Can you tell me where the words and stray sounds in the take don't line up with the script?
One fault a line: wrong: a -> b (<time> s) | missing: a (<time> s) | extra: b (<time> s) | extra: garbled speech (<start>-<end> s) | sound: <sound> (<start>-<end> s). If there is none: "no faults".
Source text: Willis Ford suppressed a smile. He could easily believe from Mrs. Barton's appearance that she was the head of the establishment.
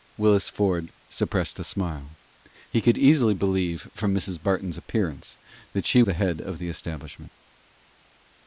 missing: was (6.0 s)